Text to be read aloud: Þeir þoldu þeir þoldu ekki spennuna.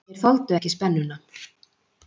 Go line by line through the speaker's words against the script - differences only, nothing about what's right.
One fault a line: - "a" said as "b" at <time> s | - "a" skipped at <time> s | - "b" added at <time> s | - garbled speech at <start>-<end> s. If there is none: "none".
- "þeir þoldu" skipped at 0.6 s